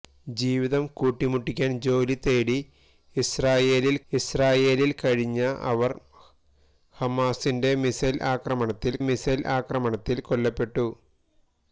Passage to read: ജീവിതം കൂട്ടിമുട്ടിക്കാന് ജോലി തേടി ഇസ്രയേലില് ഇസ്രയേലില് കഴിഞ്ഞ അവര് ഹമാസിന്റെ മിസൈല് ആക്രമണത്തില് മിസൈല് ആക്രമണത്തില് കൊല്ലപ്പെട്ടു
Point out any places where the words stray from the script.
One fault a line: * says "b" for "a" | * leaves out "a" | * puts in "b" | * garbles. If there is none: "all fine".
all fine